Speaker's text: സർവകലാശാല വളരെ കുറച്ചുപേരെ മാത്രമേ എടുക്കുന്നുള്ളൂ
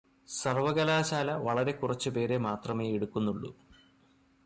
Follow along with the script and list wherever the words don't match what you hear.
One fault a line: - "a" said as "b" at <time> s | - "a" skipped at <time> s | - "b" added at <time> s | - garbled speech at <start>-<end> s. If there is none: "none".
none